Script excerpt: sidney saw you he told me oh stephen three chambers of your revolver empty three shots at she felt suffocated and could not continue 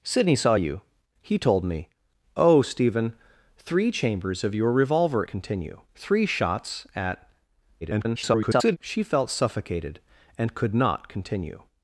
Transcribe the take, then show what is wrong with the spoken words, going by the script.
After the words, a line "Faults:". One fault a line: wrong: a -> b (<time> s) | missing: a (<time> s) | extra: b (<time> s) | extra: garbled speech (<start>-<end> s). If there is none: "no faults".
sidney saw you he told me oh stephen three chambers of your revolver continue three shots at [garbled] she felt suffocated and could not continue
Faults:
wrong: empty -> continue (5.3 s)
extra: garbled speech (7.8-8.8 s)